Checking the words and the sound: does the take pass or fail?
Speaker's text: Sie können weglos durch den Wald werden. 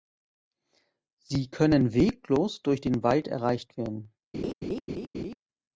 fail